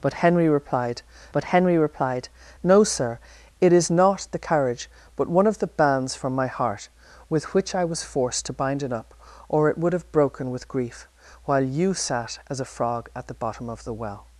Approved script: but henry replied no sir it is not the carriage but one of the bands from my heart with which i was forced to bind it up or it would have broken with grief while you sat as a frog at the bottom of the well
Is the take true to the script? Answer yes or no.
no